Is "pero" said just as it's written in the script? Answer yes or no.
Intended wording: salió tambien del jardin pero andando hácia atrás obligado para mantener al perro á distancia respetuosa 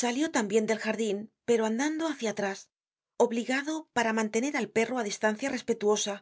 yes